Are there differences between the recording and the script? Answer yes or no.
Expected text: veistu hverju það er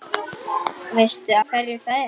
no